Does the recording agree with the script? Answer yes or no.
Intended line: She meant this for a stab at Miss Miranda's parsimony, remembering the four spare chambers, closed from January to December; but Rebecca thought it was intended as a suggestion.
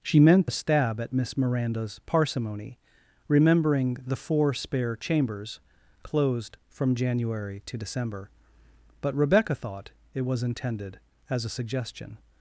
no